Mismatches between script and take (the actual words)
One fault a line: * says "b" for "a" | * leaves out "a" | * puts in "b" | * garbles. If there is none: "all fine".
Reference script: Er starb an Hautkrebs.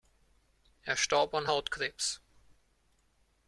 all fine